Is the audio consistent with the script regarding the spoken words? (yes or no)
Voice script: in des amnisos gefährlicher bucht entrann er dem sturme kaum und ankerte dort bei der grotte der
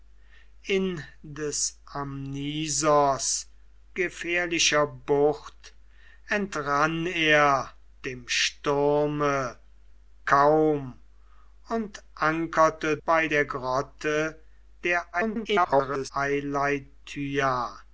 no